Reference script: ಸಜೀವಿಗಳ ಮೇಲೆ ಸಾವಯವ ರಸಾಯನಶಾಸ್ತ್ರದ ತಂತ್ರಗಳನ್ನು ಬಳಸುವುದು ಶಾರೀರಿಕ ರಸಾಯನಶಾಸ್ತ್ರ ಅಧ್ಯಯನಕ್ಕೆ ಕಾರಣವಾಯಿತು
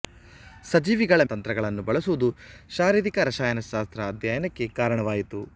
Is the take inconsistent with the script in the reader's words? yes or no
yes